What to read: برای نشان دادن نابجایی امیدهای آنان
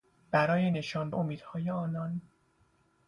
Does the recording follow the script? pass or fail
fail